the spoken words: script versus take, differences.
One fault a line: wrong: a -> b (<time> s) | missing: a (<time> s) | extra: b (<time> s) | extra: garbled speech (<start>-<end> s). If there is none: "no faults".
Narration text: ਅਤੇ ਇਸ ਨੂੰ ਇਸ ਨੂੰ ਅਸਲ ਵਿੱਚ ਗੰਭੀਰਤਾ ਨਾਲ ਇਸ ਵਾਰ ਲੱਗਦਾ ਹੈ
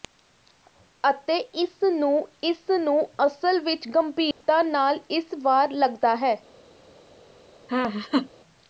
no faults